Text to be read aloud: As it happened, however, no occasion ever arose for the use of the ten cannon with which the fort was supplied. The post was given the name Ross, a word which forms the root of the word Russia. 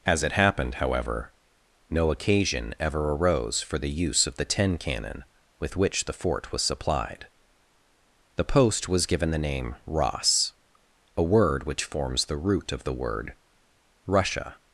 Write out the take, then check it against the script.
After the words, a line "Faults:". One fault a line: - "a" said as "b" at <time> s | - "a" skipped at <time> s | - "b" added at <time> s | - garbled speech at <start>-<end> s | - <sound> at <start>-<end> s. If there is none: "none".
As it happened, however, no occasion ever arose for the use of the ten cannon with which the fort was supplied. The post was given the name Ross, a word which forms the root of the word Russia.
Faults:
none